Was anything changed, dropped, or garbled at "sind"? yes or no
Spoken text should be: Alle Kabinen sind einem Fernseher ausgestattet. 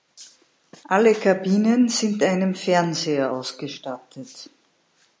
no